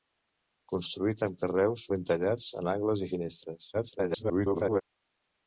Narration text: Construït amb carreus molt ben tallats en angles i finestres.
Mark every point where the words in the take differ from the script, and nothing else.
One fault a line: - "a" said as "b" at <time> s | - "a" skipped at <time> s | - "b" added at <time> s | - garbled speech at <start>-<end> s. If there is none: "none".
- "molt" skipped at 1.8 s
- garbled speech at 3.7-4.8 s